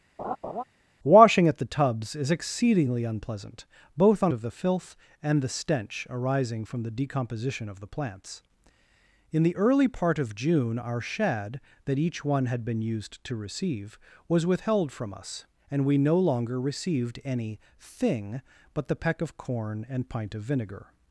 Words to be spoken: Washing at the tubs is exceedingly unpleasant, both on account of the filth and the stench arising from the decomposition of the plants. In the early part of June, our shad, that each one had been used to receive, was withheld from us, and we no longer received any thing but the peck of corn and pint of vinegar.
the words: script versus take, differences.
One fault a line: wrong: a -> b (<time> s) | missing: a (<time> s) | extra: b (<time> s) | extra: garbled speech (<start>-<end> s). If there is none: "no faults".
missing: account (4.3 s)